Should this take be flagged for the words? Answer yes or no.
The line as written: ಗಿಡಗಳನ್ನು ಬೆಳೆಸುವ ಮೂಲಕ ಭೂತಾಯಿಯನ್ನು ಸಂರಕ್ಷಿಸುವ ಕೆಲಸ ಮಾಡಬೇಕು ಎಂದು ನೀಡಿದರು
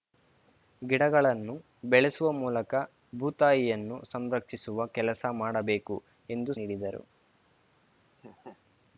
no